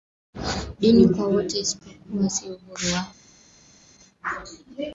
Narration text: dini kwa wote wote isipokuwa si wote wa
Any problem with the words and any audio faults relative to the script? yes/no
yes